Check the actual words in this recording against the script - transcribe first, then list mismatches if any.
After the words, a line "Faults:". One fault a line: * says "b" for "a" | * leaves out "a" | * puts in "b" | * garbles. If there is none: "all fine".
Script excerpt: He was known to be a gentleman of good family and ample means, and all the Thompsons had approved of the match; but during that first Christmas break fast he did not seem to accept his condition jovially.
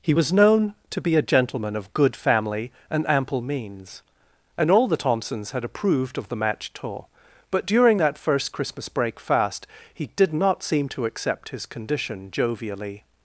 He was known to be a gentleman of good family and ample means, and all the Thompsons had approved of the match; tour but during that first Christmas break fast he did not seem to accept his condition jovially.
Faults:
* puts in "tour"